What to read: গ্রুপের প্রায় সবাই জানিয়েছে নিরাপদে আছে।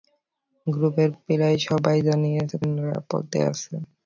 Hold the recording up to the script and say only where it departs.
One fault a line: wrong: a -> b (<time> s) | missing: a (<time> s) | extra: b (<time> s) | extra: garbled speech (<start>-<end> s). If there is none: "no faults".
no faults